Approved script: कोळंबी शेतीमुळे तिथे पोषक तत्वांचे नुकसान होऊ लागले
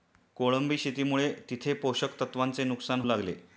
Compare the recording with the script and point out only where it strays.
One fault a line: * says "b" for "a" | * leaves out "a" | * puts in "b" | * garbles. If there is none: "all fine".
* leaves out "होऊ"